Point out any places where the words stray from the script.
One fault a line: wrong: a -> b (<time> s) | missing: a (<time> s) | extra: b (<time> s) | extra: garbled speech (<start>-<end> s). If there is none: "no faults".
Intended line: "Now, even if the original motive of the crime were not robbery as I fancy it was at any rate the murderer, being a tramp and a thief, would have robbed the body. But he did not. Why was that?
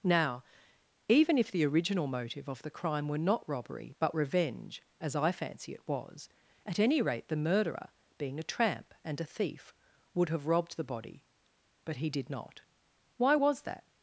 extra: but revenge (4.0 s)